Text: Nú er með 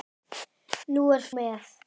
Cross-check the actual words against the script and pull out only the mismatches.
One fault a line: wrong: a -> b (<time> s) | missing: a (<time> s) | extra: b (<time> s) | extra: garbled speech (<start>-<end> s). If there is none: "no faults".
no faults